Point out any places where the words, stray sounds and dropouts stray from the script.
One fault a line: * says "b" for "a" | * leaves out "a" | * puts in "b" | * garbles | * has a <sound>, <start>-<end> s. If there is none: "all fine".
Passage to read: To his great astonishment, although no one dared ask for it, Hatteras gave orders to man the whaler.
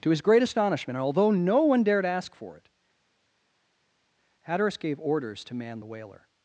all fine